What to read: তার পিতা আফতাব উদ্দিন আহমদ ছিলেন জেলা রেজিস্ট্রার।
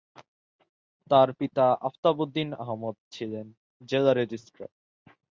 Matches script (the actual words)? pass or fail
pass